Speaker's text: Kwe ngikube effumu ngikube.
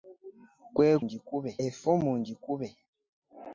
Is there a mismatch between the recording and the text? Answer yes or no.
no